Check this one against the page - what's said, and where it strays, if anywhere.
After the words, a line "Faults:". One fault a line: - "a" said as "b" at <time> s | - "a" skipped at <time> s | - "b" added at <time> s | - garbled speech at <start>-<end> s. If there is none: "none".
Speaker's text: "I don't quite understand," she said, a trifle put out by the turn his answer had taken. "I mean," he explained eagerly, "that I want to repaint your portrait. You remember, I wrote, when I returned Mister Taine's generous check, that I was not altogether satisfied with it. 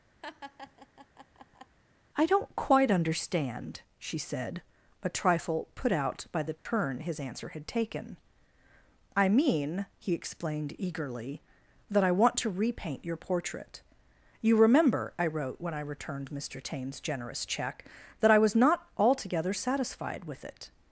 "I don't quite understand," she said, a trifle put out by the turn his answer had taken. "I mean," he explained eagerly, "that I want to repaint your portrait. You remember, I wrote, when I returned Mister Taine's generous check, that I was not altogether satisfied with it.
Faults:
none